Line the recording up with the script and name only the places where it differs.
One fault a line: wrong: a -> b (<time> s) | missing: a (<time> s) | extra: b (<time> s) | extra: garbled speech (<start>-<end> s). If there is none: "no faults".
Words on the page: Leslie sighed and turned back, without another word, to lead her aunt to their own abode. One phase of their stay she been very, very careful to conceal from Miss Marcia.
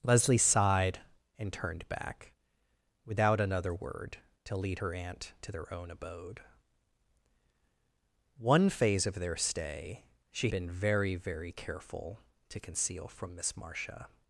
no faults